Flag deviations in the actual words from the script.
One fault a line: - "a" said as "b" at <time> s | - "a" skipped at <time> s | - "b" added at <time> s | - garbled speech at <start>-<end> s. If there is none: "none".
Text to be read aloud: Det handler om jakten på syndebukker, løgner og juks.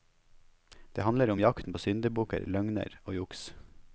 none